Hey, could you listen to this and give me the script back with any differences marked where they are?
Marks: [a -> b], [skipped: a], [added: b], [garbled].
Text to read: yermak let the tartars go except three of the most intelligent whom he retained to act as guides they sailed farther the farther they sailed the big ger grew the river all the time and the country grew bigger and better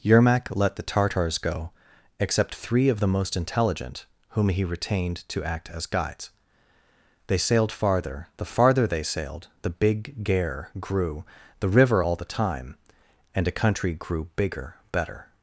yermak let the tartars go except three of the most intelligent whom he retained to act as guides they sailed farther the farther they sailed the big ger grew the river all the time and [the -> a] country grew bigger [skipped: and] better